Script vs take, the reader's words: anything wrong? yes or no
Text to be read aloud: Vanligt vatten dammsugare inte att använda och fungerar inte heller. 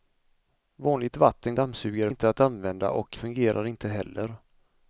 no